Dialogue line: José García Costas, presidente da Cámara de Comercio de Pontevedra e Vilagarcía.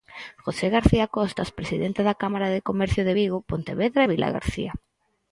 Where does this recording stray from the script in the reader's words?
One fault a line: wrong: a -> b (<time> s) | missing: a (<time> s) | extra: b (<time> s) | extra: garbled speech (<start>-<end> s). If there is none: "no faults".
extra: Vigo (3.2 s)